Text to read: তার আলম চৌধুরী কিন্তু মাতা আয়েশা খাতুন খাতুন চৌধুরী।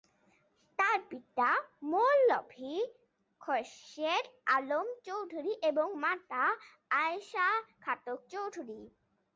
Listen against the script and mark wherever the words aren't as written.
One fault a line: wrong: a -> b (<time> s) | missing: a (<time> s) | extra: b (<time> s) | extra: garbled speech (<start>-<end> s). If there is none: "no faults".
extra: পিতা মৌলভী খোরশেদ (1.1 s)
wrong: কিন্তু -> এবং (5.6 s)
missing: খাতুন (8.2 s)